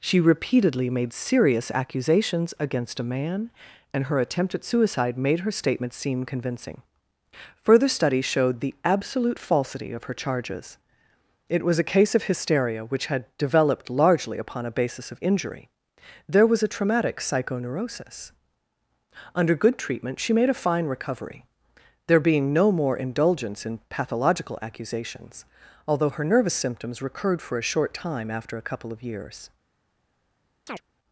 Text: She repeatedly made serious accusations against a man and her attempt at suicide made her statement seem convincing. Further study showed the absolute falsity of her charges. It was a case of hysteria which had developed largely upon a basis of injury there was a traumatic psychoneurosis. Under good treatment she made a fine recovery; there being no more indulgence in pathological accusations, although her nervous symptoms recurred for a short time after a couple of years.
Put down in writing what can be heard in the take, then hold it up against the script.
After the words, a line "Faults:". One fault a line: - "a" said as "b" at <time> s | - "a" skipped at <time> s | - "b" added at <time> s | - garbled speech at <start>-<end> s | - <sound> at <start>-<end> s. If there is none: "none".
She repeatedly made serious accusations against a man and her attempt at suicide made her statement seem convincing. Further study showed the absolute falsity of her charges. It was a case of hysteria which had developed largely upon a basis of injury there was a traumatic psychoneurosis. Under good treatment she made a fine recovery; there being no more indulgence in pathological accusations, although her nervous symptoms recurred for a short time after a couple of years.
Faults:
- chirp at 30.7-30.8 s